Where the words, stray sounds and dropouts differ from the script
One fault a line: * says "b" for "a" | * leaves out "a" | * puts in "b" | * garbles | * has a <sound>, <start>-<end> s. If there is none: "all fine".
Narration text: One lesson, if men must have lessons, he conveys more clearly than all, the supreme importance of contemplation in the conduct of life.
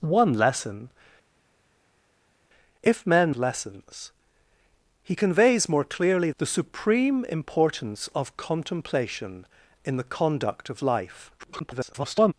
* leaves out "must have"
* leaves out "than all"
* garbles